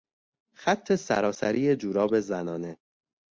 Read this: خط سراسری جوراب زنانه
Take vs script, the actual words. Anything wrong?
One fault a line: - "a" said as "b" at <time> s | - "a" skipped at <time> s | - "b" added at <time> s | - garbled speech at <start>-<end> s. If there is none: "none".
none